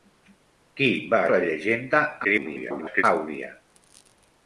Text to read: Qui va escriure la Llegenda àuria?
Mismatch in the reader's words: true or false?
true